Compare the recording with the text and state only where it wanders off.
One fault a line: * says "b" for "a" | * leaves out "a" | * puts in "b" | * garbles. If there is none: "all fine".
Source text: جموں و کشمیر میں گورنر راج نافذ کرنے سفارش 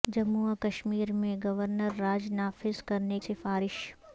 all fine